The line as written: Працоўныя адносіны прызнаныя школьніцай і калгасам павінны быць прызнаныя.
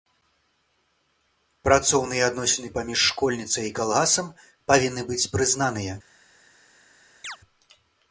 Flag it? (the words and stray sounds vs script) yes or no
yes